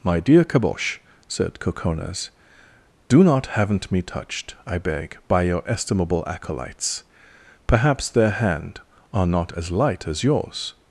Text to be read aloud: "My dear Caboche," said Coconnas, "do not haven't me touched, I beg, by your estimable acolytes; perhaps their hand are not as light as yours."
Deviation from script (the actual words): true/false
false